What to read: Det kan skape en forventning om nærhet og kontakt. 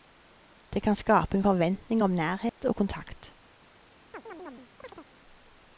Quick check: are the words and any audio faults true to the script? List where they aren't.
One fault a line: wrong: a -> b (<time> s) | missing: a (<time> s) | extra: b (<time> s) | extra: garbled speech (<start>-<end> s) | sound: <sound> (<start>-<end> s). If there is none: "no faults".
sound: dropout (2.5-2.6 s)
sound: chirp (4.1-5.1 s)